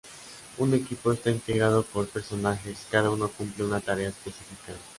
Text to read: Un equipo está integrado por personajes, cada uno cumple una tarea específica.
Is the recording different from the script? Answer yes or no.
no